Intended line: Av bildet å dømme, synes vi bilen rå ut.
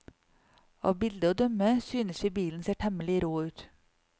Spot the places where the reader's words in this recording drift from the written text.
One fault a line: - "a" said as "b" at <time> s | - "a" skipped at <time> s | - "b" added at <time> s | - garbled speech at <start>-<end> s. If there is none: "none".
- "ser temmelig" added at 2.7 s